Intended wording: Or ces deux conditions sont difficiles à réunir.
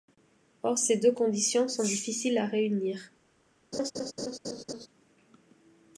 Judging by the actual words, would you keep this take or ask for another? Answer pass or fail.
pass